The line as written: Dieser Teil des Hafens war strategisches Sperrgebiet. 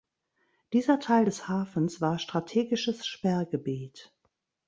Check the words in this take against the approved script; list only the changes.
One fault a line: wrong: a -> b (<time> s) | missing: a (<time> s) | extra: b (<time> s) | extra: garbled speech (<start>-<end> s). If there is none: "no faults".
no faults